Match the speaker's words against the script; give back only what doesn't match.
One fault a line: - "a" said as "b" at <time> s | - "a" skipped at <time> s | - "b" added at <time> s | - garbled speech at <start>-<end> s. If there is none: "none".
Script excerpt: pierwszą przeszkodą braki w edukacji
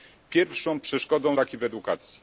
none